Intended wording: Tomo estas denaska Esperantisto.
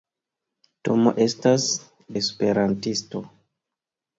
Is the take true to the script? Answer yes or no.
no